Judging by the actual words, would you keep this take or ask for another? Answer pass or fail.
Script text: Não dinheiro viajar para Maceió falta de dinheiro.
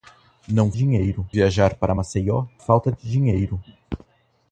pass